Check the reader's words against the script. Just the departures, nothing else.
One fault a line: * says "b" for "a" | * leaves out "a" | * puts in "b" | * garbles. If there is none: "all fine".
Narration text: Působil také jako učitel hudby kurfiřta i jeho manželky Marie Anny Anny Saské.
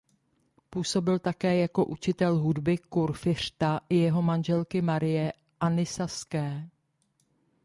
* leaves out "Anny"